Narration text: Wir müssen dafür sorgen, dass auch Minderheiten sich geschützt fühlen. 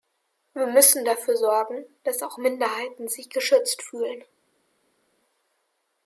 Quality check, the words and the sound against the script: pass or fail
pass